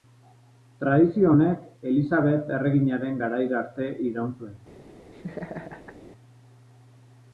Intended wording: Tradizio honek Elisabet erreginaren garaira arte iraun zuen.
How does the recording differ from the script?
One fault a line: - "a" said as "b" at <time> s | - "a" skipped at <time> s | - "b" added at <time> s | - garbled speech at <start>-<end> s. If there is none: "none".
none